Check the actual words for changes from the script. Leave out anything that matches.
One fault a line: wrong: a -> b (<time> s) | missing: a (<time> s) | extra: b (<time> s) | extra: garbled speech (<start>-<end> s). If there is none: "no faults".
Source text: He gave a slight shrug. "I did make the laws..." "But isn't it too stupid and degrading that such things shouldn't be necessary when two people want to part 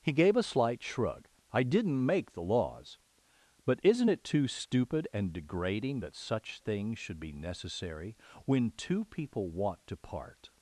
wrong: did -> didn't (1.6 s)
wrong: shouldn't -> should (7.0 s)